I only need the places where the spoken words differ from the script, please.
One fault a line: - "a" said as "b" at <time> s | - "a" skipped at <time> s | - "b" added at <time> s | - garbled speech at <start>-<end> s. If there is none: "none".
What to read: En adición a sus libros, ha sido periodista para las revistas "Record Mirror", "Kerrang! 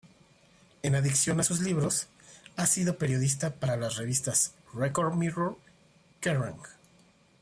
none